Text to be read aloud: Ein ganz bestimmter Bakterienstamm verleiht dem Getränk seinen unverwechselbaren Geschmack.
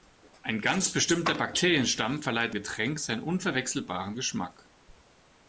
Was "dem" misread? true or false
true